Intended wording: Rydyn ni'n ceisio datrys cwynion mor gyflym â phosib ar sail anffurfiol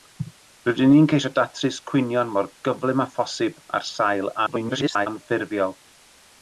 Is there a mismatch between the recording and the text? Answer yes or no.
yes